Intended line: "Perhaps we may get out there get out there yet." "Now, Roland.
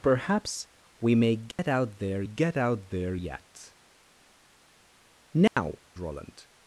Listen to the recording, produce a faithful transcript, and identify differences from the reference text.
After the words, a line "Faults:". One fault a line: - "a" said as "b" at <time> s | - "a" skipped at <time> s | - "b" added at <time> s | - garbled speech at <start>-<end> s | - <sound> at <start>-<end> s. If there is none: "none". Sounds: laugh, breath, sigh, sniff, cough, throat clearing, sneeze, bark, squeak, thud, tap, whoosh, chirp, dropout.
"Perhaps we may get out there get out there yet." "Now, Roland.
Faults:
- dropout at 1.5-1.6 s
- dropout at 5.5-5.6 s